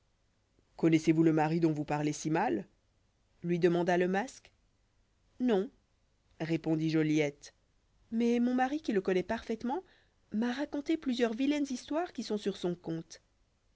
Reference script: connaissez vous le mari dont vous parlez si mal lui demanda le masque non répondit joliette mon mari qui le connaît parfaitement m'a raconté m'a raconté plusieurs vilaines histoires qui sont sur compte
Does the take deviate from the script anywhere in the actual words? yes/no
yes